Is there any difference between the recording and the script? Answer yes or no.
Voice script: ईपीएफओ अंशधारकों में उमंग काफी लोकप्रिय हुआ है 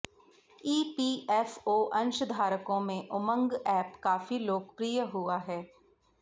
yes